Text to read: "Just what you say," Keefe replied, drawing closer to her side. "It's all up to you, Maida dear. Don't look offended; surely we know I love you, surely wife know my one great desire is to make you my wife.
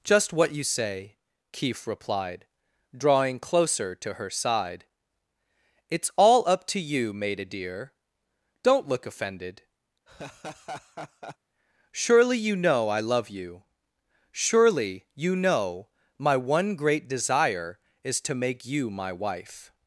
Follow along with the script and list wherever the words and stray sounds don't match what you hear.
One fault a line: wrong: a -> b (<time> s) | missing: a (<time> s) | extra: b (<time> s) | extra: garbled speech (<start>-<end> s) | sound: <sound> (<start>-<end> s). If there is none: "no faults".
sound: laugh (10.1-11.4 s)
wrong: we -> you (12.4 s)
wrong: wife -> you (15.2 s)